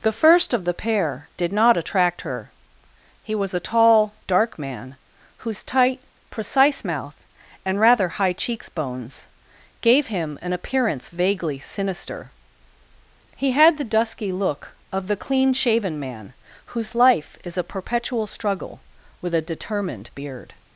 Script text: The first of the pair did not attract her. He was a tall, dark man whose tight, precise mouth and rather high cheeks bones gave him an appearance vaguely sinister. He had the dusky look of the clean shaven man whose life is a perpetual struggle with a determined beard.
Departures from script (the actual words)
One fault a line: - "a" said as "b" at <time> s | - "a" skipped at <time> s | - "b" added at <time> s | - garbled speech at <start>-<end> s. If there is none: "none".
none